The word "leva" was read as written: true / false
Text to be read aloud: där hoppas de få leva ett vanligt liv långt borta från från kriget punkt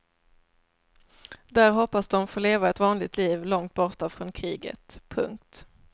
true